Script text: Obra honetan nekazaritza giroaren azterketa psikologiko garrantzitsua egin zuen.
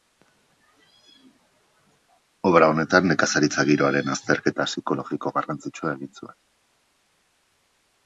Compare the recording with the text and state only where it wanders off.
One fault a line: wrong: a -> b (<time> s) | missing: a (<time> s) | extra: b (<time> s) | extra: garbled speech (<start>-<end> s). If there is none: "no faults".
no faults